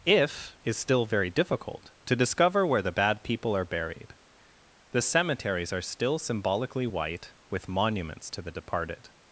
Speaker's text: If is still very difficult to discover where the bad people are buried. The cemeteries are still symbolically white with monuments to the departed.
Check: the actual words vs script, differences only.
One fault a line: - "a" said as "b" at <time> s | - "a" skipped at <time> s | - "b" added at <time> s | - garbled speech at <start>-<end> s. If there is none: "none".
none